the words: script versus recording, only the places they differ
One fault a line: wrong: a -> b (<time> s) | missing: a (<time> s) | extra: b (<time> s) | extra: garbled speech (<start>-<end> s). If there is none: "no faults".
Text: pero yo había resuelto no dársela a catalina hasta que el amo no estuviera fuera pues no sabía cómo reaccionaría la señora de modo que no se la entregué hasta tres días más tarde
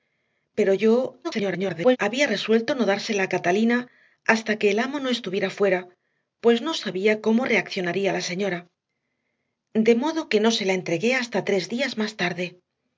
extra: garbled speech (1.2-2.0 s)